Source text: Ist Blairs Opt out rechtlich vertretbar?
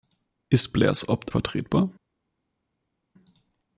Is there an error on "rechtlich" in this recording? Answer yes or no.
yes